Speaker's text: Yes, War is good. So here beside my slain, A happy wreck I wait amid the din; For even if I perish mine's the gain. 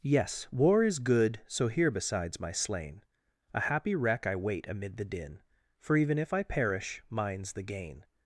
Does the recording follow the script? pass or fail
fail